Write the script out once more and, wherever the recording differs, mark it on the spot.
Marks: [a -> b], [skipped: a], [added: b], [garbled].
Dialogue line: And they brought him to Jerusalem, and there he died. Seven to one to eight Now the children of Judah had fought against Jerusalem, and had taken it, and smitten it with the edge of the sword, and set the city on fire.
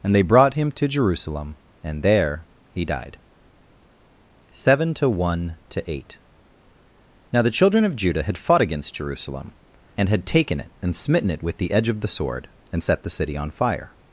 And they brought him to Jerusalem, and there he died. Seven to one to eight Now the children of Judah had fought against Jerusalem, and had taken it, and smitten it with the edge of the sword, and set the city on fire.